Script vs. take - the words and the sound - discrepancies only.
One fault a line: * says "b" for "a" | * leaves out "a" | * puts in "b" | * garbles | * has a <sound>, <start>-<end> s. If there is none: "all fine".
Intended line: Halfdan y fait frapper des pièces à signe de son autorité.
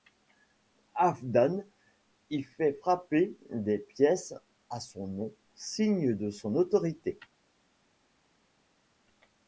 * puts in "son nom"